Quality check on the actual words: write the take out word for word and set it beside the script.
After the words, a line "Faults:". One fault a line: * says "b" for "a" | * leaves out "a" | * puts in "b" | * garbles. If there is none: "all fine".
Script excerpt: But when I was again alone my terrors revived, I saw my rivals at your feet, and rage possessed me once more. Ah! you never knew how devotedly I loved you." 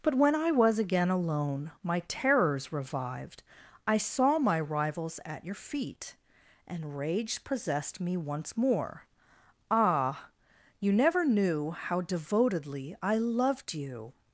But when I was again alone my terrors revived, I saw my rivals at your feet, and rage possessed me once more. Ah! you never knew how devotedly I loved you."
Faults:
all fine